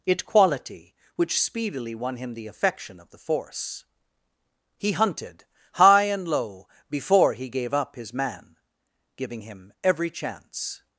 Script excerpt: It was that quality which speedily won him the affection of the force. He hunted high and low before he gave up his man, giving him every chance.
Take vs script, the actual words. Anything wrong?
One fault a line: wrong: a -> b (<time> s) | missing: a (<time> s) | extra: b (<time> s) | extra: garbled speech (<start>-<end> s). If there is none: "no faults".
missing: was that (0.2 s)